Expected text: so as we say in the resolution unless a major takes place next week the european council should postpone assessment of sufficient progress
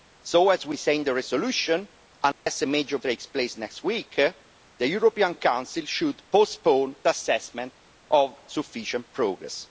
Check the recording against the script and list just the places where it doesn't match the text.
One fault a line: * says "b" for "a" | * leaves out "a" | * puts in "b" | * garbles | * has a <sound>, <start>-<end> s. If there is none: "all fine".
* has a dropout, 2.3-2.5 s